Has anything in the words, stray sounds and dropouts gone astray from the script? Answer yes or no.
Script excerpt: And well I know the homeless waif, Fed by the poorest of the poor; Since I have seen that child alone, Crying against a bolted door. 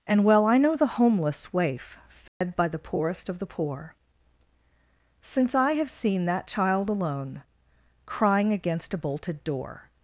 yes